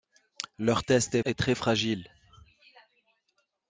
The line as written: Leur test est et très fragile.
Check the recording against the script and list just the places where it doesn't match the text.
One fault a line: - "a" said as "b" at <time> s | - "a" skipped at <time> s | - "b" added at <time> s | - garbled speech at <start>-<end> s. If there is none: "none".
none